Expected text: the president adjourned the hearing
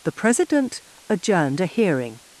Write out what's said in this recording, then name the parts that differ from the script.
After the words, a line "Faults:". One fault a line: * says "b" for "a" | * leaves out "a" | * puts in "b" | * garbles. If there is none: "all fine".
the president adjourned a hearing
Faults:
* says "a" for "the"